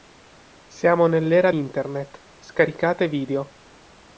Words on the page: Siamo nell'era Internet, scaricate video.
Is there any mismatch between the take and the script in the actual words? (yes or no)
no